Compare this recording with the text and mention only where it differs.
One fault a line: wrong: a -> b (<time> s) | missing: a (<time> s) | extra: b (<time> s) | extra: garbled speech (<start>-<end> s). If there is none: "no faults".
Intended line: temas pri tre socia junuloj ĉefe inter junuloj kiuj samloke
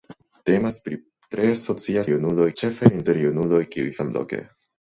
no faults